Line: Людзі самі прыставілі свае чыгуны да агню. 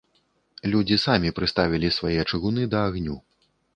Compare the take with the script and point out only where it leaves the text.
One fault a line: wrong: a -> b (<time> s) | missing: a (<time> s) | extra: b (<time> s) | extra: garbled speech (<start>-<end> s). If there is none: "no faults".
no faults